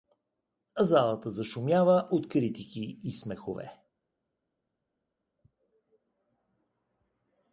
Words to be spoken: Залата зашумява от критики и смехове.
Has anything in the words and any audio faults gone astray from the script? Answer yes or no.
no